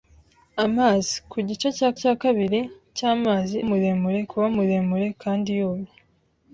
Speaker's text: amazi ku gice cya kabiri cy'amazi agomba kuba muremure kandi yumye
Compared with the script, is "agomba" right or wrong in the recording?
wrong